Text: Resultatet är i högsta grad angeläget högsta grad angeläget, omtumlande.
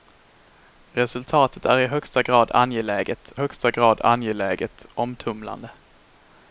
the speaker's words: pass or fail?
pass